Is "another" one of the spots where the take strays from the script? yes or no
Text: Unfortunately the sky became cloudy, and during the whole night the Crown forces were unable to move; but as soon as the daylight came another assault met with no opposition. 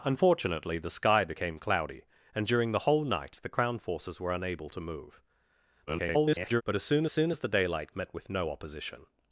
yes